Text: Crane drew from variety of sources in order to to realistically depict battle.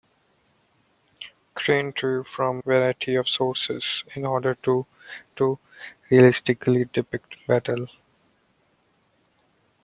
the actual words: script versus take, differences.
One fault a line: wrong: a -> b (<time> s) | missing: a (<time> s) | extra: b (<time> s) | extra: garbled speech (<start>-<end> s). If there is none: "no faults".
no faults